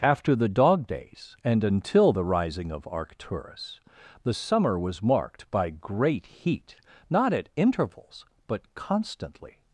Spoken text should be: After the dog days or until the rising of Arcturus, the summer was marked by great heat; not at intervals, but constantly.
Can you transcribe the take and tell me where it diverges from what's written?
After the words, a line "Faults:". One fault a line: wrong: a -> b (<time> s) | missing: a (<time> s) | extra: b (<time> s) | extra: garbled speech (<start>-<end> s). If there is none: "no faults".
After the dog days and until the rising of Arcturus, the summer was marked by great heat; not at intervals, but constantly.
Faults:
wrong: or -> and (1.4 s)